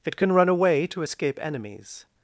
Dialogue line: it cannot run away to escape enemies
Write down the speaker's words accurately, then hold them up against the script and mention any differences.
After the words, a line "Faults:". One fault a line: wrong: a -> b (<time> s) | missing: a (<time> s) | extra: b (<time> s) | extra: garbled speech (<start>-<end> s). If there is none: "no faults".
it can run away to escape enemies
Faults:
wrong: cannot -> can (0.1 s)